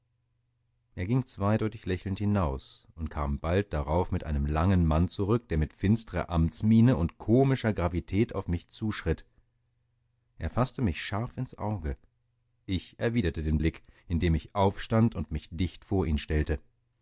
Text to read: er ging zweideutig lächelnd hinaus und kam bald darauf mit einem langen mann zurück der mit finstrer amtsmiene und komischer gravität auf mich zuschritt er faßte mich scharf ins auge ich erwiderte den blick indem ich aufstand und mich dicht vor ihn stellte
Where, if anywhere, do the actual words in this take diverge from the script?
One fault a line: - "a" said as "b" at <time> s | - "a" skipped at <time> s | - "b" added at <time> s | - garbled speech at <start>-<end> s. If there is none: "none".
none